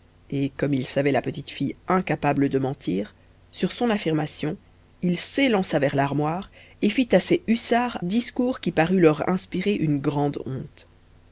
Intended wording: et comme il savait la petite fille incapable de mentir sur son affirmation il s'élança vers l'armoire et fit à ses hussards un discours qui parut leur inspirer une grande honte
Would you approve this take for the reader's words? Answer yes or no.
no